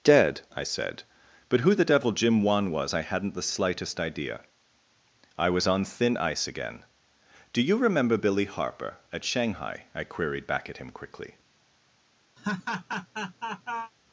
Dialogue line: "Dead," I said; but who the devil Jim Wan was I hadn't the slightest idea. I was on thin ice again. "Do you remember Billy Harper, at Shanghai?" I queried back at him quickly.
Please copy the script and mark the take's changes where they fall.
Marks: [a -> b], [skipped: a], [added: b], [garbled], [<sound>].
"Dead," I said; but who the devil Jim Wan was I hadn't the slightest idea. I was on thin ice again. "Do you remember Billy Harper, at Shanghai?" I queried back at him quickly. [laugh]